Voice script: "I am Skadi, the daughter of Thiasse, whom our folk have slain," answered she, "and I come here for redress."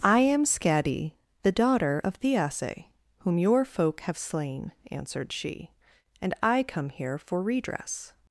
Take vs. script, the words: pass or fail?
fail